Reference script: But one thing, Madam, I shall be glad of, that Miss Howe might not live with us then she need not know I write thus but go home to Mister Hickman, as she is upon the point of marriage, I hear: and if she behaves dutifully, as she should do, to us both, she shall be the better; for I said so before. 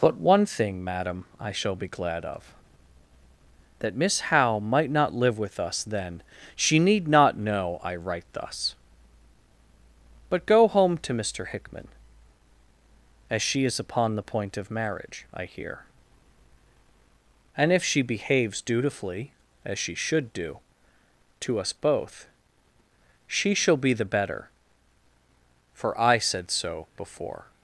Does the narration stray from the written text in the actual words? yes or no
no